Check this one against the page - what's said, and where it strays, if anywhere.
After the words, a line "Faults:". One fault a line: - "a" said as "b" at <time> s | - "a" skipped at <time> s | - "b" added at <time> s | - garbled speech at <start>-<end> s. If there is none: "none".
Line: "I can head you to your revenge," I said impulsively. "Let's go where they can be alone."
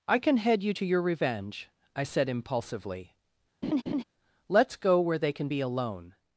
"I can head you to your revenge," I said impulsively. "Let's go where they can be alone."
Faults:
none